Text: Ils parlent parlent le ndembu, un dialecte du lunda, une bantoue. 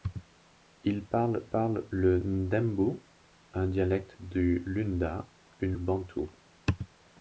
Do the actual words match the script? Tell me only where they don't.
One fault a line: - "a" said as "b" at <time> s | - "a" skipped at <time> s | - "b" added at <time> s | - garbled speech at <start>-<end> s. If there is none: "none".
none